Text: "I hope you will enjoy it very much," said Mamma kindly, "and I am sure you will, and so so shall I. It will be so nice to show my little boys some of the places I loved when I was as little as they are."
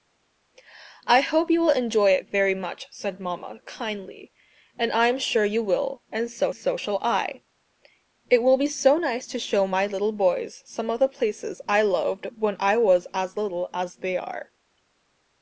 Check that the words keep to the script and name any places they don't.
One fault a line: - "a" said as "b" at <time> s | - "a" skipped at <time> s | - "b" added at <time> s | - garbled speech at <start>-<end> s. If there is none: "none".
none